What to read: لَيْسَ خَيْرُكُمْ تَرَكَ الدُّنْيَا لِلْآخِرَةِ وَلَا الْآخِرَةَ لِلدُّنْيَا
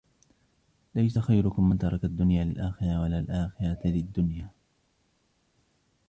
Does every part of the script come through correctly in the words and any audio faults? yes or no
no